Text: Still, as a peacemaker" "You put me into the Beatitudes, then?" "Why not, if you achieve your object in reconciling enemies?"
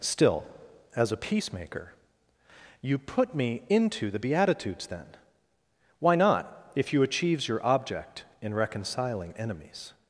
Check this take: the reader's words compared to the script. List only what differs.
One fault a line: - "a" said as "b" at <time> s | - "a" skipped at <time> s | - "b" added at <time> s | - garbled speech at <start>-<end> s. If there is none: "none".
- "achieve" said as "achieves" at 7.0 s